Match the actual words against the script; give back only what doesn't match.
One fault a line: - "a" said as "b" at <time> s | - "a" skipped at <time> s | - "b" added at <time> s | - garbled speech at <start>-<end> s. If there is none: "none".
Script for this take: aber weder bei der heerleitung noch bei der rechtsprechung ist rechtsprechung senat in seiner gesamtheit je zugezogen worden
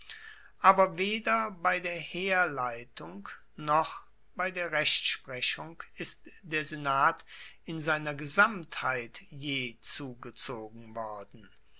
- "rechtsprechung" said as "der" at 6.4 s